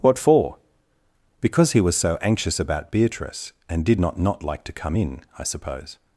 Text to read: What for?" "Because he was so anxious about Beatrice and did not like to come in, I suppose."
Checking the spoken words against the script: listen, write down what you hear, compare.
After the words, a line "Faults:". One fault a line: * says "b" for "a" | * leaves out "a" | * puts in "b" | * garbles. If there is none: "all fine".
What for?" "Because he was so anxious about Beatrice and did not not like to come in, I suppose."
Faults:
* puts in "not"